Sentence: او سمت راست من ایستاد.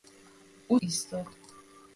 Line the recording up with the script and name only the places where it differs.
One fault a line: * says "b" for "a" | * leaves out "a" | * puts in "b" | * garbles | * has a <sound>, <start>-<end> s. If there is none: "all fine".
* leaves out "سمت راست من"